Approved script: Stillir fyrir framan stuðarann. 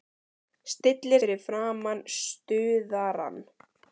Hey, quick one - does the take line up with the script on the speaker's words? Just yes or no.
yes